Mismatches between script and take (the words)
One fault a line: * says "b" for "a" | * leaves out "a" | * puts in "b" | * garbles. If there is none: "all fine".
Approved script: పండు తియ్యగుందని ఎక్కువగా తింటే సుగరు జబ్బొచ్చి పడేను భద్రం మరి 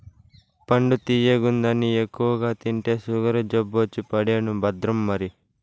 all fine